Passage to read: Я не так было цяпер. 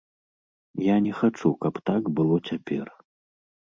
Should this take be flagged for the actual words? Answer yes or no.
yes